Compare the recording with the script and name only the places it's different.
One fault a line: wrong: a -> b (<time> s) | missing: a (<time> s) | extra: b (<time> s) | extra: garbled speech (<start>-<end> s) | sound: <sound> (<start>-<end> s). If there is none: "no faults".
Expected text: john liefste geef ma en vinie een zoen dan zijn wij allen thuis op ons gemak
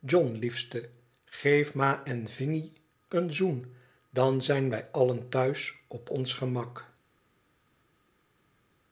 no faults